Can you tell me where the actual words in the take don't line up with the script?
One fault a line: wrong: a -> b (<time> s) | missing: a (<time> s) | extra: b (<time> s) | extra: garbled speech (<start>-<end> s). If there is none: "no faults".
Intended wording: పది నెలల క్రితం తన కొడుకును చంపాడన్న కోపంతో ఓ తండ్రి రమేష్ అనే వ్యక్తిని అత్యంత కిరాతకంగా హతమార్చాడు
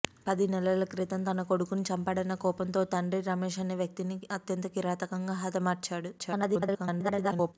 extra: garbled speech (6.2-7.5 s)